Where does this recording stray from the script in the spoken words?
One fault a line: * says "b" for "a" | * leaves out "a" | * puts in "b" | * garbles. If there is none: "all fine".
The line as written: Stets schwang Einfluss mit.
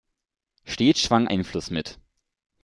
all fine